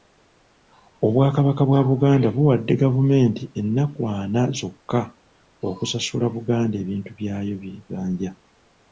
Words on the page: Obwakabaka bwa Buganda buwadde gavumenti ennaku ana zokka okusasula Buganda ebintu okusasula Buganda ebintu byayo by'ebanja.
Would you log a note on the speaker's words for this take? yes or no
yes